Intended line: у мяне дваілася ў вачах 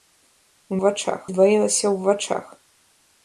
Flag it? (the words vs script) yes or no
yes